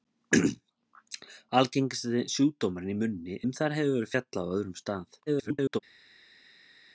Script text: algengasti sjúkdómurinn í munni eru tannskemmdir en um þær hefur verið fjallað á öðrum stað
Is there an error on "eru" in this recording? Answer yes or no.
yes